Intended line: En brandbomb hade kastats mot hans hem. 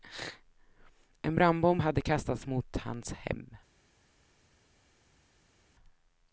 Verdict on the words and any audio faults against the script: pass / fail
pass